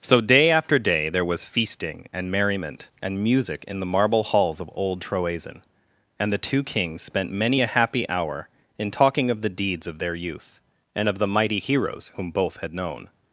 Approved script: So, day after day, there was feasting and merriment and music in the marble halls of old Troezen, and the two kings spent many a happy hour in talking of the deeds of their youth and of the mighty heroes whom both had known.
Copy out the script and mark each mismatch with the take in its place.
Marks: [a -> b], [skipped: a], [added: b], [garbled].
So, day after day, there was feasting and merriment and music in the marble halls of old Troezen, and the two kings spent many a happy hour in talking of the deeds of their youth and of the mighty heroes whom both had known.